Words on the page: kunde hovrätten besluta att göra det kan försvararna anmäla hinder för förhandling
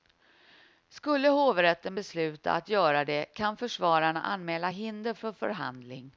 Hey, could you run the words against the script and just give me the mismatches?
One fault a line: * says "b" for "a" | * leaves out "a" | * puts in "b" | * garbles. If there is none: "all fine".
* says "skulle" for "kunde"